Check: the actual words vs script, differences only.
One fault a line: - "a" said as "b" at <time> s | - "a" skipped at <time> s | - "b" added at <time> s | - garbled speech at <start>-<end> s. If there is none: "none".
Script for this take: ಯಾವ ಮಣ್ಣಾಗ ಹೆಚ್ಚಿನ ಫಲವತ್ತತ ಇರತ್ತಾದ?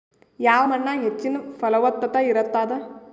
none